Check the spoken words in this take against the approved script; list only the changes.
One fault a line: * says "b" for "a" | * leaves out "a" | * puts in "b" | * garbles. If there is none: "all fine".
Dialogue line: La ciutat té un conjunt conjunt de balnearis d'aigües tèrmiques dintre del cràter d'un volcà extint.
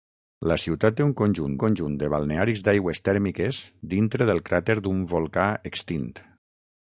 all fine